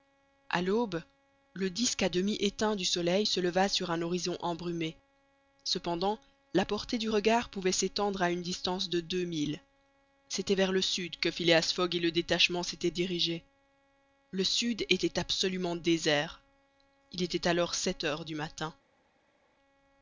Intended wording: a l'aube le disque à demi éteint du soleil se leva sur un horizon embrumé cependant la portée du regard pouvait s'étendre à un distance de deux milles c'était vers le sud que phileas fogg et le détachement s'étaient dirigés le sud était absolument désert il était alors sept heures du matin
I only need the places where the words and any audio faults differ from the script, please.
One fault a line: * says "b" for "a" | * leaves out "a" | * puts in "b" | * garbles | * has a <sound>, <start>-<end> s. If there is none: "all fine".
* says "une" for "un"